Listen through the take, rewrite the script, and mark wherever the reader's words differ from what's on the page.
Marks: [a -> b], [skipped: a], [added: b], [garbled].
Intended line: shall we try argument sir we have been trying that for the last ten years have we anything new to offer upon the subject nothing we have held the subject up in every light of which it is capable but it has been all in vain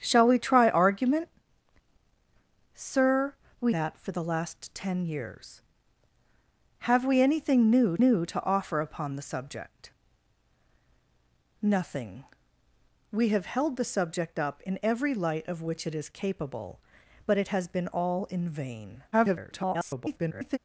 shall we try argument sir we [skipped: have been trying] that for the last ten years have we anything new [added: new] to offer upon the subject nothing we have held the subject up in every light of which it is capable but it has been all in vain [garbled]